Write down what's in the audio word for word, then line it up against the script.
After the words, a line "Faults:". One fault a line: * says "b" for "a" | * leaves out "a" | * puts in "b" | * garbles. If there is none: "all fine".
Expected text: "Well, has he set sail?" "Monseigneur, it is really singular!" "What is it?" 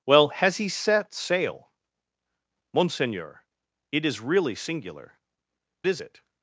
"Well, has he set sail?" "Monseigneur, it is really singular!" "Is it?"
Faults:
* leaves out "What"